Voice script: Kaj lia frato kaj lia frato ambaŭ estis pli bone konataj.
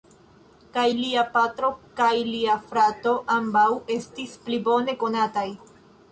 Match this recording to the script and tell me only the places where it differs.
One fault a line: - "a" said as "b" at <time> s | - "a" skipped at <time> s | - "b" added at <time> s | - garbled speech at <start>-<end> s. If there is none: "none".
- "frato" said as "patro" at 1.4 s